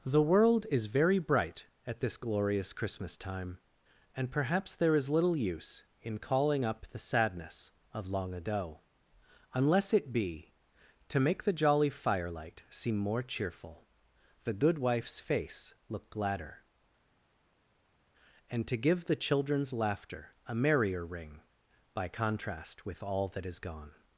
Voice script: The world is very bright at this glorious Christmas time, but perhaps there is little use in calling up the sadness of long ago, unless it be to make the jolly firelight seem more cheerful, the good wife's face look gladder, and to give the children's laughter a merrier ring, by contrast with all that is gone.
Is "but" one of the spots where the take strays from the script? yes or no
yes